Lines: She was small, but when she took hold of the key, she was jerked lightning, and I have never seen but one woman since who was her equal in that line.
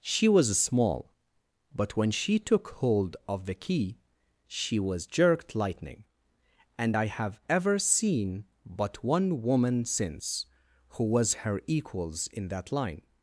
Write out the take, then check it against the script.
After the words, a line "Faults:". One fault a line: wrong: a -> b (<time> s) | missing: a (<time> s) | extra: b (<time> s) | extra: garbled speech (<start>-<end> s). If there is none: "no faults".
She was small, but when she took hold of the key, she was jerked lightning, and I have ever seen but one woman since who was her equals in that line.
Faults:
wrong: never -> ever (7.5 s)
wrong: equal -> equals (11.7 s)